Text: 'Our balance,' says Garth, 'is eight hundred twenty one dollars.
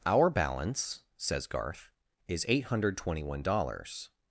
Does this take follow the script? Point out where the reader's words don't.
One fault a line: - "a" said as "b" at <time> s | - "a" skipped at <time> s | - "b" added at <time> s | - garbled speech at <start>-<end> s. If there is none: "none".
none